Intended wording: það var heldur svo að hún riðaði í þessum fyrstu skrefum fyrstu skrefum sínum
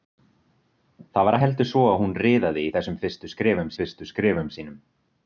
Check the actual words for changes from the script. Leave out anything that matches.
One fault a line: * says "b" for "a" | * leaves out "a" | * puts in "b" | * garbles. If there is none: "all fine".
all fine